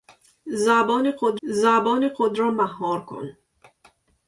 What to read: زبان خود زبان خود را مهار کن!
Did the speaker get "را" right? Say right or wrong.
right